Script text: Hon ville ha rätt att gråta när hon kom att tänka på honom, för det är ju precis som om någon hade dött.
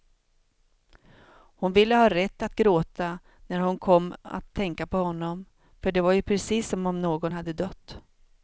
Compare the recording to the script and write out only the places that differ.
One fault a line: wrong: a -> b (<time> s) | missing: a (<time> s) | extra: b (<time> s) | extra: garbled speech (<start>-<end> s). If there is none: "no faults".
wrong: är -> var (6.0 s)